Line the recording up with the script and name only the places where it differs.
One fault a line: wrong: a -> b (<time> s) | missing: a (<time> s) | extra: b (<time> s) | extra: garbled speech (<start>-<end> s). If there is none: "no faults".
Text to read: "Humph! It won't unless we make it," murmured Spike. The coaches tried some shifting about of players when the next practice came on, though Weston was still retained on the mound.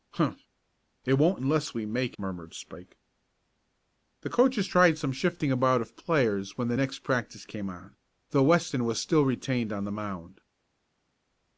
missing: it (2.2 s)